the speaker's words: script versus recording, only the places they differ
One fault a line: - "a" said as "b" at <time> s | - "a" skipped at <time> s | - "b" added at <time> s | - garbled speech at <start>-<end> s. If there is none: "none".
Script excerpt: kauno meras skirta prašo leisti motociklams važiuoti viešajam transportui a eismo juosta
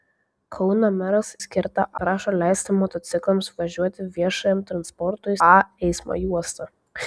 none